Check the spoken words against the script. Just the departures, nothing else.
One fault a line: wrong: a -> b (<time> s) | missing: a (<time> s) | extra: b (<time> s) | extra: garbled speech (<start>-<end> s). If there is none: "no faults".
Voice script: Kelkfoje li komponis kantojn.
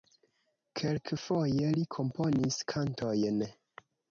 no faults